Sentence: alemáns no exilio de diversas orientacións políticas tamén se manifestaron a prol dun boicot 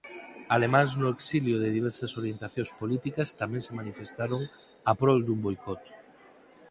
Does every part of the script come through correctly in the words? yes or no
yes